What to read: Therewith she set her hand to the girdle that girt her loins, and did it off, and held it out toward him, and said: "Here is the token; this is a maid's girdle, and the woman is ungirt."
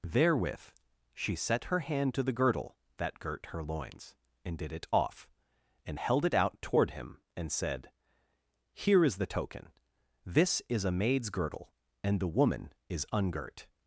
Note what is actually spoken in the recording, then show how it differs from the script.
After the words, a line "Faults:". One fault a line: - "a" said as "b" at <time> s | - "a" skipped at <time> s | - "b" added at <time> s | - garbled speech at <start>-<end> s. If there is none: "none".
Therewith she set her hand to the girdle that girt her loins, and did it off, and held it out toward him, and said: "Here is the token; this is a maid's girdle, and the woman is ungirt."
Faults:
none